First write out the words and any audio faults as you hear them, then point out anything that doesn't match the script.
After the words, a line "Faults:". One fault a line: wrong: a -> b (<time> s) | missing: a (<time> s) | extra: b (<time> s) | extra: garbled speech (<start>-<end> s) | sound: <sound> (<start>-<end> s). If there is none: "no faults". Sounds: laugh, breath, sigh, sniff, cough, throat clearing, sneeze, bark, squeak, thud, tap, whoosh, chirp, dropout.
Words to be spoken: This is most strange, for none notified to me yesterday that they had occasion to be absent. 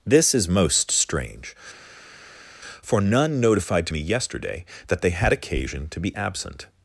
This is most strange, for none notified to me yesterday that they had occasion to be absent.
Faults:
no faults